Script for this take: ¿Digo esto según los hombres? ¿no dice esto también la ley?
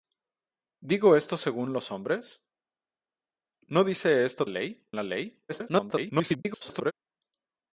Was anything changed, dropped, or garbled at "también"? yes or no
yes